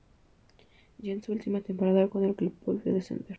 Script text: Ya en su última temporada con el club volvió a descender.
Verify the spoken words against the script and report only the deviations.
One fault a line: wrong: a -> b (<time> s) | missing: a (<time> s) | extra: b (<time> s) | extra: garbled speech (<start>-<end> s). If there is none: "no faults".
no faults